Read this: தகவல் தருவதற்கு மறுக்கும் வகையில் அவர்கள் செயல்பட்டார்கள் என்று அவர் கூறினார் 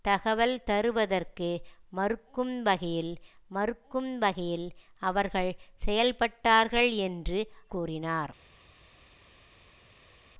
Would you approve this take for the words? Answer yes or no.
no